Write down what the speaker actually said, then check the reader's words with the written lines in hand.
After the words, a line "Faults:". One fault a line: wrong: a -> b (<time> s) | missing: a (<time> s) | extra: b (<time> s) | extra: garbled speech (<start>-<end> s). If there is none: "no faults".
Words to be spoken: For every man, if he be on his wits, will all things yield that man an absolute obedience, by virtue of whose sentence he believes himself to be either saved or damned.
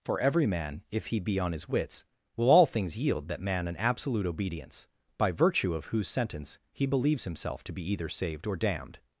For every man, if he be on his wits, will all things yield that man an absolute obedience, by virtue of whose sentence he believes himself to be either saved or damned.
Faults:
no faults